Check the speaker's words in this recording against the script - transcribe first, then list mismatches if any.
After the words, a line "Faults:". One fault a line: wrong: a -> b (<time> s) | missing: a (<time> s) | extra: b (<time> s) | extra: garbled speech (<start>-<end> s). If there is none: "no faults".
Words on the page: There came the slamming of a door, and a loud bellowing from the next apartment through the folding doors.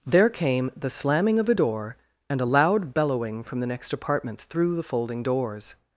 There came the slamming of a door, and a loud bellowing from the next apartment through the folding doors.
Faults:
no faults